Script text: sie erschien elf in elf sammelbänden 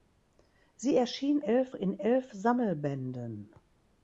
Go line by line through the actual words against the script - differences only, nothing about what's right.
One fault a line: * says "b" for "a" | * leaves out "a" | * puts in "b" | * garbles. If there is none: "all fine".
all fine